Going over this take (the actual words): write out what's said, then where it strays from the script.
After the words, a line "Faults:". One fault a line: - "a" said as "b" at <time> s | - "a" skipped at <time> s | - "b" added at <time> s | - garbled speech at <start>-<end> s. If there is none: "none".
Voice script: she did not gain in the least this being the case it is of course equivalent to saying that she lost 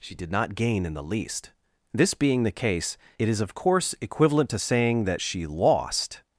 she did not gain in the least this being the case it is of course equivalent to saying that she lost
Faults:
none